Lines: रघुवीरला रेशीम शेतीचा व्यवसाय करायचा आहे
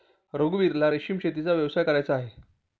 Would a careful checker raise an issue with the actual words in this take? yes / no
no